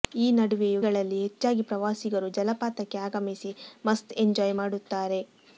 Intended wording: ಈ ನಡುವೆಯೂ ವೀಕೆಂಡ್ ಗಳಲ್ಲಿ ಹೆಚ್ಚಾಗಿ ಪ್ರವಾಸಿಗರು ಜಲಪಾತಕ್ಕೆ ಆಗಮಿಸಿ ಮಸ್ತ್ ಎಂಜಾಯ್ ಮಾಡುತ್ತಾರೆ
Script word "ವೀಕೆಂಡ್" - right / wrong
wrong